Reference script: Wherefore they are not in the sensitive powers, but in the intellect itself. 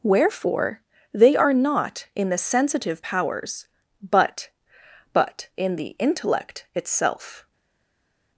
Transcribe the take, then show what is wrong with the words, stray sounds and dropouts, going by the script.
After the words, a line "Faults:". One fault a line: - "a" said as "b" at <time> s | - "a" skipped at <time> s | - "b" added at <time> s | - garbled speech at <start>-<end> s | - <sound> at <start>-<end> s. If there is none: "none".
Wherefore they are not in the sensitive powers, but but in the intellect itself.
Faults:
- "but" added at 5.1 s